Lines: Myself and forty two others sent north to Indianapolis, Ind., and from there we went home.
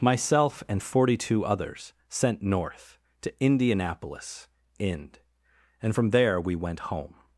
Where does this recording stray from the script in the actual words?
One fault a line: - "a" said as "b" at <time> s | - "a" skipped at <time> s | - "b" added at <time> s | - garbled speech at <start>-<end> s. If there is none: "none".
none